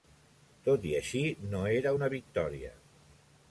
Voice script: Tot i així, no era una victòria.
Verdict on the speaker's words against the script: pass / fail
pass